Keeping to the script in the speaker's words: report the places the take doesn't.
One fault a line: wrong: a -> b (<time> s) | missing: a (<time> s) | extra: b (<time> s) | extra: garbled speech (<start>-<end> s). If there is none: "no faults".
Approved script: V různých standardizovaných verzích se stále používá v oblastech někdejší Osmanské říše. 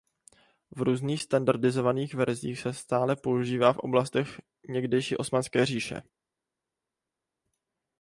no faults